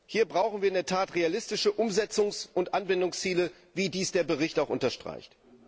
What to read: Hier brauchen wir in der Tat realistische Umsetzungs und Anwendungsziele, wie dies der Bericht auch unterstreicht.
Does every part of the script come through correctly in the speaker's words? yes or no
yes